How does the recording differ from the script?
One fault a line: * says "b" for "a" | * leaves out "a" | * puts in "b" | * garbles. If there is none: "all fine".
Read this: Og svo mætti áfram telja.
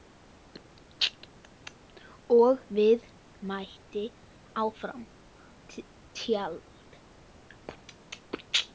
all fine